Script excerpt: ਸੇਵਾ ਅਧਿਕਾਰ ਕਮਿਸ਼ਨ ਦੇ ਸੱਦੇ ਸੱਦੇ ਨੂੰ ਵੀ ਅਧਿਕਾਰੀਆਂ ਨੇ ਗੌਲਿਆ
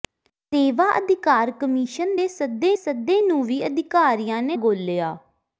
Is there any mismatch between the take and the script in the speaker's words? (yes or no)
no